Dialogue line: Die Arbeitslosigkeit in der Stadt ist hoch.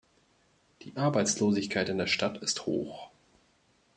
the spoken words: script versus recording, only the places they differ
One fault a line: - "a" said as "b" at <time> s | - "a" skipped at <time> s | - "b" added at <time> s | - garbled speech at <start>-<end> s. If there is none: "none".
none